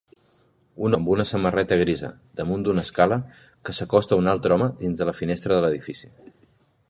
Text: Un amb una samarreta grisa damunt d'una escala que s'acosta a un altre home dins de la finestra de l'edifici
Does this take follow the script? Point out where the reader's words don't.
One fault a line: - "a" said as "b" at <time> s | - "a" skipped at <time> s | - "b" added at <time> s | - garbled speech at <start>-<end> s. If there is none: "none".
none